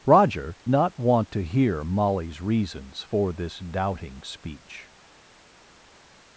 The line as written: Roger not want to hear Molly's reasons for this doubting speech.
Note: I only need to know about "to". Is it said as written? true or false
true